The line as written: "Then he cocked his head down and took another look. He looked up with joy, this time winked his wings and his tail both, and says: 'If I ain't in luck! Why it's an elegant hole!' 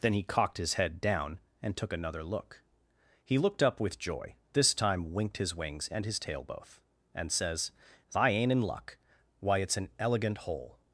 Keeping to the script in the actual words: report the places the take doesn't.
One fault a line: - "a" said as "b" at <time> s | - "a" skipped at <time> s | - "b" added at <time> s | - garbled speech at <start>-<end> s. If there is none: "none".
- "If" skipped at 7.7 s